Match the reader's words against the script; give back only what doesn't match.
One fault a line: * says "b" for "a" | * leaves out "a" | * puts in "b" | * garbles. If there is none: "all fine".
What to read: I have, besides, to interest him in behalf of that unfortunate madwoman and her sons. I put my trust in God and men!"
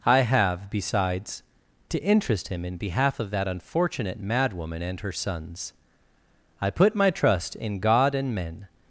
all fine